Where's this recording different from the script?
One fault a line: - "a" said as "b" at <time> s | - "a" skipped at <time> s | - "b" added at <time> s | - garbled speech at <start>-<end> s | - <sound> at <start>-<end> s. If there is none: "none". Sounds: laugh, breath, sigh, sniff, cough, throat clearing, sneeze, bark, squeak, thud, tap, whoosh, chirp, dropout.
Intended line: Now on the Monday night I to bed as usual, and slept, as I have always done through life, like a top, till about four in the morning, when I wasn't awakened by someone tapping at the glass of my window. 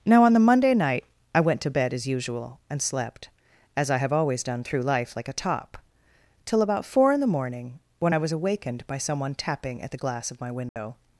- "went" added at 1.4 s
- "wasn't" said as "was" at 8.2 s
- dropout at 10.7-10.8 s